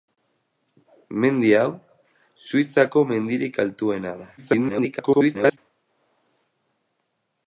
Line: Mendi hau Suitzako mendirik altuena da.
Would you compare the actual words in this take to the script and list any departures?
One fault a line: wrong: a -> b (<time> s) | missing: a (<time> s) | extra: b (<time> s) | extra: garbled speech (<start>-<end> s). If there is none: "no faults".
extra: garbled speech (4.4-5.6 s)